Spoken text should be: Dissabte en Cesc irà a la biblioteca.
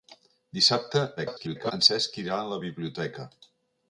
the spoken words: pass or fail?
fail